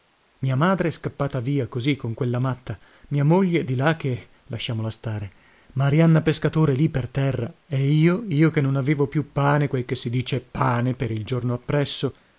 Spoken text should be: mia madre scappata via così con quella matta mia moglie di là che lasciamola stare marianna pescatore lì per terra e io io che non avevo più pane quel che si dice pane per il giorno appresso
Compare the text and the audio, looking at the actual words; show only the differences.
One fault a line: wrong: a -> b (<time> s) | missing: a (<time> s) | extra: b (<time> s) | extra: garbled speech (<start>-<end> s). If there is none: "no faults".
no faults